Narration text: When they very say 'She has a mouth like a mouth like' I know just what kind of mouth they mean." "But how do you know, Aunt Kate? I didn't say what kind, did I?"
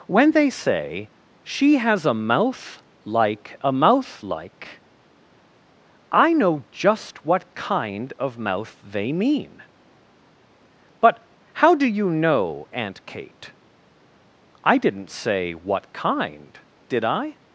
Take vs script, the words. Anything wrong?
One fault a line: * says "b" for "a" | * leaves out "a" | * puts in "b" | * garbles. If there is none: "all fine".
* leaves out "very"